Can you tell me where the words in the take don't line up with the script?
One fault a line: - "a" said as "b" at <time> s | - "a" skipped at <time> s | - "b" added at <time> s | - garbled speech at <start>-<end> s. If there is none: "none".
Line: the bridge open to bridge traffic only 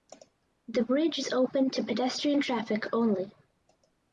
- "is" added at 1.2 s
- "bridge" said as "pedestrian" at 1.8 s